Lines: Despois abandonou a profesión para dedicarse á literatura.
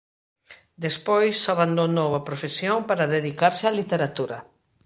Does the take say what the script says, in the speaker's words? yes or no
yes